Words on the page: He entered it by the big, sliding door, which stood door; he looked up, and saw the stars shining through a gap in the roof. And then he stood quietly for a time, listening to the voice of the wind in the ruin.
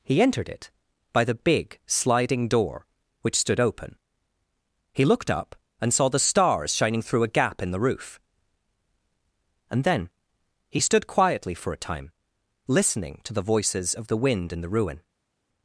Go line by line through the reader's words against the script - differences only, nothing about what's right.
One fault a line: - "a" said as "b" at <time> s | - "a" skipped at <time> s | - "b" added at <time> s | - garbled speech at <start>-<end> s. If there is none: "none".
- "door" said as "open" at 3.6 s
- "voice" said as "voices" at 13.4 s